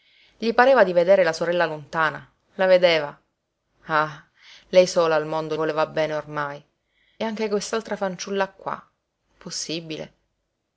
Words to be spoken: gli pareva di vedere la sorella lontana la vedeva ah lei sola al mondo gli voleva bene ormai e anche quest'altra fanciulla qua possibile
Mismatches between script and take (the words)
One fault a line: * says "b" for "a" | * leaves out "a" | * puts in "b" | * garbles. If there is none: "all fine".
* leaves out "gli"
* leaves out "e"